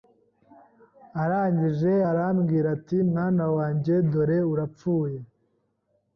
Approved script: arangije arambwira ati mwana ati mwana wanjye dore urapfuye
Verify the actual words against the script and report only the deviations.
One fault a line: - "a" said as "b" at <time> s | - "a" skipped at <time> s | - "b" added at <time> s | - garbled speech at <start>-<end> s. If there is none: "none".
- "ati mwana" skipped at 3.4 s